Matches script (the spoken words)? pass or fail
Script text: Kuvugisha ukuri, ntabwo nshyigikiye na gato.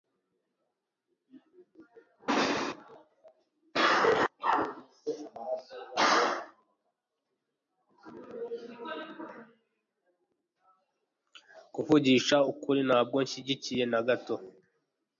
pass